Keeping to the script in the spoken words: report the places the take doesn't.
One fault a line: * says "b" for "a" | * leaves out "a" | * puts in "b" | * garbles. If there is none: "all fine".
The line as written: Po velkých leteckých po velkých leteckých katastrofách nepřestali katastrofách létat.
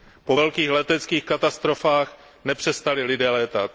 * leaves out "po velkých leteckých"
* says "lidé" for "katastrofách"